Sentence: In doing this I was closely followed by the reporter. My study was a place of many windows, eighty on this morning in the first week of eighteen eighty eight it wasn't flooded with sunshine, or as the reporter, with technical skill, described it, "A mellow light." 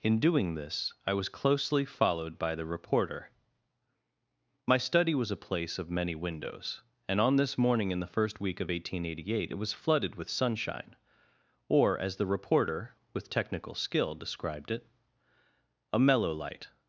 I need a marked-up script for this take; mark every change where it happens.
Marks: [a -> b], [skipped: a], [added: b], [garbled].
In doing this I was closely followed by the reporter. My study was a place of many windows, [eighty -> and] on this morning in the first week of eighteen eighty eight it [wasn't -> was] flooded with sunshine, or as the reporter, with technical skill, described it, "A mellow light."